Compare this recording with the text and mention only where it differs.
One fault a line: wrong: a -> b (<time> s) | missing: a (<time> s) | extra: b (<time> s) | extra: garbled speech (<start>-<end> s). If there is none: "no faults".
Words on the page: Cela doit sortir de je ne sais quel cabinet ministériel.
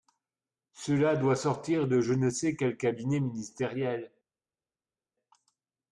no faults